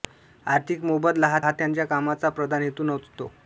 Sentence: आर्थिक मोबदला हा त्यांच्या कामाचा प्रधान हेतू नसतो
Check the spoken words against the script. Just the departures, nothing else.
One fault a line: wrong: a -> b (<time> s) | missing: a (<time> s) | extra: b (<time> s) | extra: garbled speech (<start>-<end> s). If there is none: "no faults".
extra: हा (1.4 s)